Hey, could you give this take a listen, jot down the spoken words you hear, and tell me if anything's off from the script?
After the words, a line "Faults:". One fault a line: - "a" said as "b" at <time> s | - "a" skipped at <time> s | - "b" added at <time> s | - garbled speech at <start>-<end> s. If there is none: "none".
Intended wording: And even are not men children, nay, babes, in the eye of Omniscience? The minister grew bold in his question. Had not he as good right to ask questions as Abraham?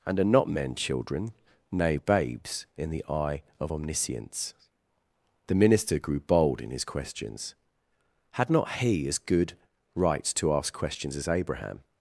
And are not men children, nay, babes, in the eye of Omniscience? The minister grew bold in his questions. Had not he as good right to ask questions as Abraham?
Faults:
- "even" skipped at 0.2 s
- "question" said as "questions" at 6.8 s